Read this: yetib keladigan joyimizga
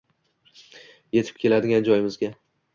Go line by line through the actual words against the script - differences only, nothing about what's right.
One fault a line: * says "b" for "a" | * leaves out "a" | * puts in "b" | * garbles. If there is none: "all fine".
all fine